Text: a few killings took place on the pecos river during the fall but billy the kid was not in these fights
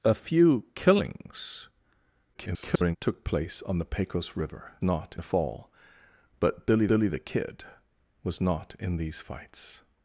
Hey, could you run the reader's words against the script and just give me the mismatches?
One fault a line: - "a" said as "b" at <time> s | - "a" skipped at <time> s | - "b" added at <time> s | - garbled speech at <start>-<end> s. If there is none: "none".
- garbled speech at 2.3-3.0 s
- "during" said as "not" at 4.8 s
- "billy" added at 6.9 s